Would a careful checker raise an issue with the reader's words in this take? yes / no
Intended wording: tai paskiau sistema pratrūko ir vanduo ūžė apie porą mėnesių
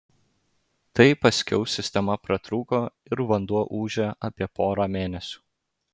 no